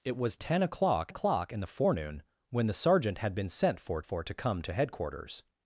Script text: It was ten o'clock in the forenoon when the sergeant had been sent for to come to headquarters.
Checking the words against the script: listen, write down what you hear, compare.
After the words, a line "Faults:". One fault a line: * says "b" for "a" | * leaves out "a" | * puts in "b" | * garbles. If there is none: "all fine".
It was ten o'clock o'clock in the forenoon when the sergeant had been sent for for to come to headquarters.
Faults:
* puts in "o'clock"
* puts in "for"